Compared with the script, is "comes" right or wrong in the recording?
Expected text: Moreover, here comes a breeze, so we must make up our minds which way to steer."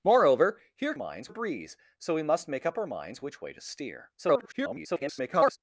wrong